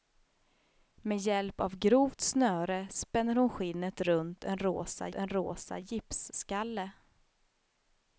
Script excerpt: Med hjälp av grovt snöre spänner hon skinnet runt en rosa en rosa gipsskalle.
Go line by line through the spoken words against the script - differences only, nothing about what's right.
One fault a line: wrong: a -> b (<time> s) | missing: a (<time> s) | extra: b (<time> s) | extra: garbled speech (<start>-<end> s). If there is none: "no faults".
no faults